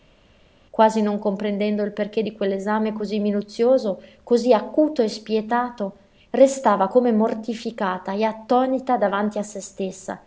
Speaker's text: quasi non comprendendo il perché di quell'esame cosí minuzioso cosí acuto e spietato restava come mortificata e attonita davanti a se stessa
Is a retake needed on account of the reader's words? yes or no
no